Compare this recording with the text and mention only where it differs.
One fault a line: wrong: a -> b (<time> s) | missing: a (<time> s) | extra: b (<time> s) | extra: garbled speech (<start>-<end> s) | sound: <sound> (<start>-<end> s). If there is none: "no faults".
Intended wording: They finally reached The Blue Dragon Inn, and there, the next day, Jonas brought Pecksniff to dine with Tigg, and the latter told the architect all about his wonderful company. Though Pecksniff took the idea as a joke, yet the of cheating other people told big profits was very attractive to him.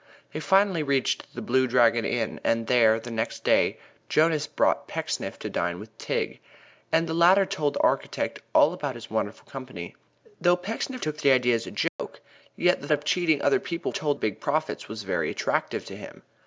sound: dropout (11.9-12.0 s)